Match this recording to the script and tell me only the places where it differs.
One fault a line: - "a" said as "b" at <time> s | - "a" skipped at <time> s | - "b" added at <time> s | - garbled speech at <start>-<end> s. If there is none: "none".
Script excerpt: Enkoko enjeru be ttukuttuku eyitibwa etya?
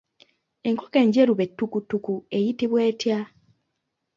none